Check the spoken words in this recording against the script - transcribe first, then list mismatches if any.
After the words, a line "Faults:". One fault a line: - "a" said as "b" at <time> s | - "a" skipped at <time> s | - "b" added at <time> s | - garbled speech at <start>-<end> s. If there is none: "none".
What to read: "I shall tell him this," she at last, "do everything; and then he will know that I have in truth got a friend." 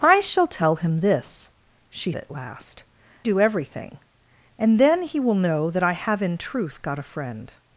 "I shall tell him this," she at last, "do everything; and then he will know that I have in truth got a friend."
Faults:
none